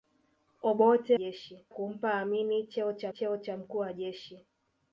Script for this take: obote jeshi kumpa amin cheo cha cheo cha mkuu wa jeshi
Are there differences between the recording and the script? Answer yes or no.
no